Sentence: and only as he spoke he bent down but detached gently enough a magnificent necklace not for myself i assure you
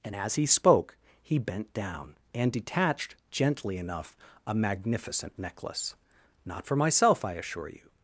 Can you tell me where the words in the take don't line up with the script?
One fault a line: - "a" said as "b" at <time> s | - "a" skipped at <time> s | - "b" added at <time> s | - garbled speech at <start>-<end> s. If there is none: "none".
- "only" skipped at 0.1 s
- "but" said as "and" at 2.3 s